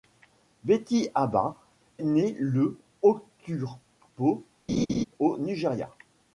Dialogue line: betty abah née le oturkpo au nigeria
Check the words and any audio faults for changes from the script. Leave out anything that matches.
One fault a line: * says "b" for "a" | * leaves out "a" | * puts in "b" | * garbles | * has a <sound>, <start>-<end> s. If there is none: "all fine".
* has a laugh, 4.7-5.0 s